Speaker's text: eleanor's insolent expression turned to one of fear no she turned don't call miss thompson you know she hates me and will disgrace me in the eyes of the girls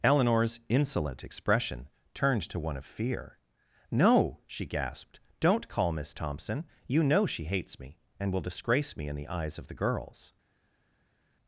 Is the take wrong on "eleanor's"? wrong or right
right